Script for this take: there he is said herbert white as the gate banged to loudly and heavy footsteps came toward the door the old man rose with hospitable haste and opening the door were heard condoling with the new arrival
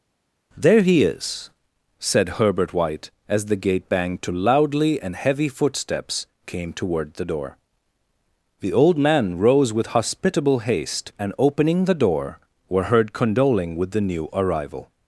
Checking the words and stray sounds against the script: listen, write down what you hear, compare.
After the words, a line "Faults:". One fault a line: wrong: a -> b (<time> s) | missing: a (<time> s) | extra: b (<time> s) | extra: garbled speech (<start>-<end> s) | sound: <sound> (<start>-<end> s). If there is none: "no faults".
there he is said herbert white as the gate banged to loudly and heavy footsteps came toward the door the old man rose with hospitable haste and opening the door were heard condoling with the new arrival
Faults:
no faults